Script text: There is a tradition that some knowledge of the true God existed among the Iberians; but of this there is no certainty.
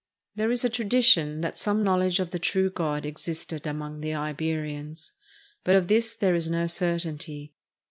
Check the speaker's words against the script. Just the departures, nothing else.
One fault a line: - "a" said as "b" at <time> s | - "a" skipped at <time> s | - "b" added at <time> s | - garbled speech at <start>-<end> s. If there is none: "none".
none